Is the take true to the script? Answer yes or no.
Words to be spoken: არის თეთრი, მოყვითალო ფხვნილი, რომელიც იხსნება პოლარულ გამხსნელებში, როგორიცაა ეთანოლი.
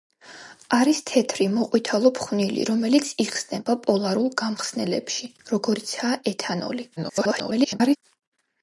no